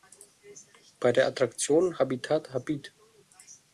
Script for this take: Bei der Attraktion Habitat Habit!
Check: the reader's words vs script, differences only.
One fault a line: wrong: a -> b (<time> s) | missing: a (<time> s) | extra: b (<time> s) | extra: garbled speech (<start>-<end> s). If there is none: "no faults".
no faults